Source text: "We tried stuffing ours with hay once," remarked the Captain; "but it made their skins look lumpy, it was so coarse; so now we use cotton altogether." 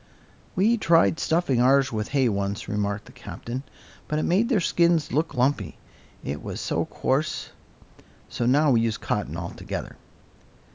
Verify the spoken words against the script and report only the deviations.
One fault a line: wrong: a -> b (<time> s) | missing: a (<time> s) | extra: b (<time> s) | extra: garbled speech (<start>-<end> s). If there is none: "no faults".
no faults